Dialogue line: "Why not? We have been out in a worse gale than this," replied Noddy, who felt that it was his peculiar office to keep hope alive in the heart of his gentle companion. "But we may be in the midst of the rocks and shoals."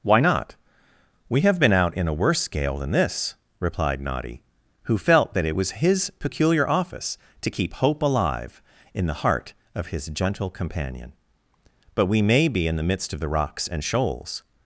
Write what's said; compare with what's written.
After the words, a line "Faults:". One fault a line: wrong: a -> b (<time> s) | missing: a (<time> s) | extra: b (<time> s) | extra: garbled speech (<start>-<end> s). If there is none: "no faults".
"Why not? We have been out in a worse gale than this," replied Noddy, who felt that it was his peculiar office to keep hope alive in the heart of his gentle companion. "But we may be in the midst of the rocks and shoals."
Faults:
no faults